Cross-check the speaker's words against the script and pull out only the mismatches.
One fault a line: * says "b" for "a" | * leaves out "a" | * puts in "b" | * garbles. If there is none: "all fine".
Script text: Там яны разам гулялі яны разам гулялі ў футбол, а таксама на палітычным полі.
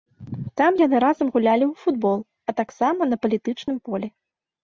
* leaves out "яны разам гулялі"